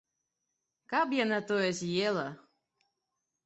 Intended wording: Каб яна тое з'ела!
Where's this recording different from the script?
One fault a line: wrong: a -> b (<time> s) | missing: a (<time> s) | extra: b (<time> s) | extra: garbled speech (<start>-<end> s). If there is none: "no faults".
no faults